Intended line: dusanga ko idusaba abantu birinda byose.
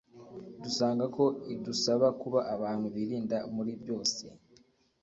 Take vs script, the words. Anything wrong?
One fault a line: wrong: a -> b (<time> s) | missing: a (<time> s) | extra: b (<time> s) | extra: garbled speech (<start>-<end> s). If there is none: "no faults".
extra: kuba (2.2 s)
extra: muri (3.5 s)